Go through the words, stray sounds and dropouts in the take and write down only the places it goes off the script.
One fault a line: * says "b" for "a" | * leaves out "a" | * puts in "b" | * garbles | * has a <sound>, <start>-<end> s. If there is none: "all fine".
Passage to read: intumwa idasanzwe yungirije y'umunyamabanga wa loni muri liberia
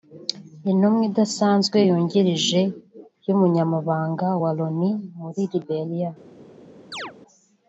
* has a chirp, 6.9-7.1 s